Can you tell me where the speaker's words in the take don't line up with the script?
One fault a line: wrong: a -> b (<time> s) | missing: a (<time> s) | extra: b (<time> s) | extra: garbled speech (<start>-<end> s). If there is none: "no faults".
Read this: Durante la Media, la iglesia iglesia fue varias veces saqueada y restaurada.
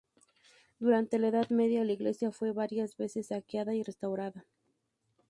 extra: Edad (1.3 s)
missing: iglesia (2.3 s)